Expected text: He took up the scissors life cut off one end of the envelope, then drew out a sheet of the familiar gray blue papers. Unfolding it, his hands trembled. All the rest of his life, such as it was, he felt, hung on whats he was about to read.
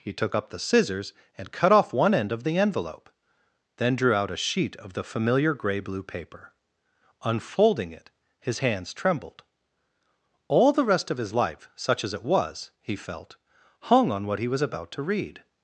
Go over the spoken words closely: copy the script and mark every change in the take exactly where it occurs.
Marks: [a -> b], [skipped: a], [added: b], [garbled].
He took up the scissors [life -> and] cut off one end of the envelope, then drew out a sheet of the familiar gray blue [papers. -> paper] Unfolding it, his hands trembled. All the rest of his life, such as it was, he felt, hung on [whats -> what] he was about to read.